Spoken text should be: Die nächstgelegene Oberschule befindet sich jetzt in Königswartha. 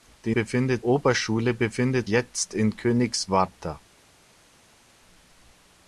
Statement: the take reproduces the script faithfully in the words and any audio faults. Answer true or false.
false